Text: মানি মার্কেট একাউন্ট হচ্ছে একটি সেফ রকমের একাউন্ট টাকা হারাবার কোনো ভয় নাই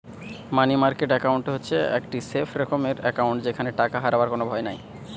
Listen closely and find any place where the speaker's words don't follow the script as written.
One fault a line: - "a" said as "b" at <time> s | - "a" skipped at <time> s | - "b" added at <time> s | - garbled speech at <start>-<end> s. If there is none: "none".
- "যেখানে" added at 3.4 s